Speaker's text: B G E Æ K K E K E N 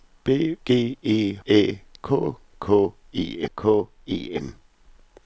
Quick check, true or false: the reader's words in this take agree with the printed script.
true